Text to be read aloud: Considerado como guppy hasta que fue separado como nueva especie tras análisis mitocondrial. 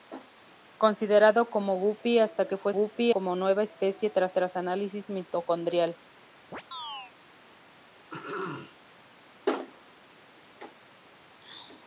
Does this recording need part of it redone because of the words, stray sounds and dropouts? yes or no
yes